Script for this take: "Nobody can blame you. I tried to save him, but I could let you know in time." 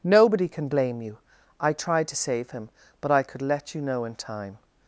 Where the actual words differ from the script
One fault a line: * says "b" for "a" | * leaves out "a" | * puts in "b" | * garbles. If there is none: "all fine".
all fine